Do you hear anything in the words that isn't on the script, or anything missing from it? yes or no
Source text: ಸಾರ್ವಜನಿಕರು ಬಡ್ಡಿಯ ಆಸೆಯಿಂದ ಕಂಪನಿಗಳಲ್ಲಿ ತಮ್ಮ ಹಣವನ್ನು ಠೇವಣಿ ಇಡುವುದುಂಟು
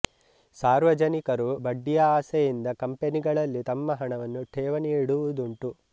no